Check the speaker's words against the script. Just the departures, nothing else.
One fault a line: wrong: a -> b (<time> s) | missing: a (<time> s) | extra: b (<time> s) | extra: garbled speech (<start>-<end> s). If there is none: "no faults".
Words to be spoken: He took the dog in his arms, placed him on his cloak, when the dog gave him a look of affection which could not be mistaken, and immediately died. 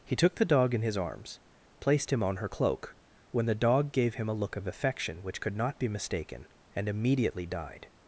wrong: his -> her (2.4 s)